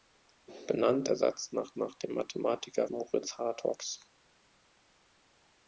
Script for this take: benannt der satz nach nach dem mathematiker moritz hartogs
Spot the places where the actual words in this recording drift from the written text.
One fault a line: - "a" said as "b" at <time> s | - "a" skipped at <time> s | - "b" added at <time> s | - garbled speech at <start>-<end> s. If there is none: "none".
none